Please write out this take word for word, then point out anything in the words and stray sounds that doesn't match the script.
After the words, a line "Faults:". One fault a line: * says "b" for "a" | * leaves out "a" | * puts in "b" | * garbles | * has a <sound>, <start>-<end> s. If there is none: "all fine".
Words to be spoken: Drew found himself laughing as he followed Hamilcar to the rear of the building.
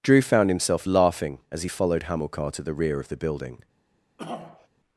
Drew found himself laughing as he followed Hamilcar to the rear of the building.
Faults:
* has a throat clearing, 4.2-4.7 s